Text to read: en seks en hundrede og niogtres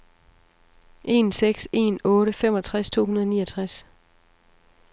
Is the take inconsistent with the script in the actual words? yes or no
yes